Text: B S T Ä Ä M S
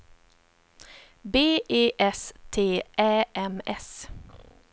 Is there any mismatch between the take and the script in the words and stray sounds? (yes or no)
yes